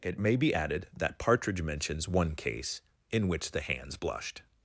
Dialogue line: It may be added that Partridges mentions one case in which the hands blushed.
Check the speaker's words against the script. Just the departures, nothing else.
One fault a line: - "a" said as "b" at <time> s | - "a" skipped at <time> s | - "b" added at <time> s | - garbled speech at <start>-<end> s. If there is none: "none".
- "Partridges" said as "Partridge" at 1.2 s